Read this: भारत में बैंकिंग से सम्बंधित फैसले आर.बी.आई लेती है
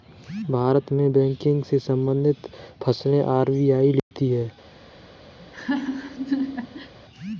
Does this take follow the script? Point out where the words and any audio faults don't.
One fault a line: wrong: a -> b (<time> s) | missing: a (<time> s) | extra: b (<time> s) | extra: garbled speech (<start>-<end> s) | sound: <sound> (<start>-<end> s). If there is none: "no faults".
sound: dropout (4.0-4.1 s)
sound: laugh (5.4-6.9 s)